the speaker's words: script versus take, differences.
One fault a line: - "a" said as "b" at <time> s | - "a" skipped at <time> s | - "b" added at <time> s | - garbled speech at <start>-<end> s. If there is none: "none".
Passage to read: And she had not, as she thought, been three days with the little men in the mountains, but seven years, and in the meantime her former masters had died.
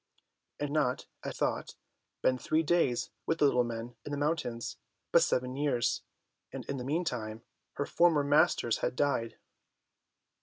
- "she had" skipped at 0.7 s
- "she" skipped at 1.3 s